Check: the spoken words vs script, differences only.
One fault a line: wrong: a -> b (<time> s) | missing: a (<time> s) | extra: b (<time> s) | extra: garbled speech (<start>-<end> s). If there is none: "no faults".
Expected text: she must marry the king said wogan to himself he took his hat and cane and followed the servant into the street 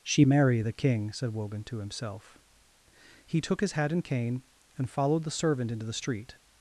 missing: must (0.2 s)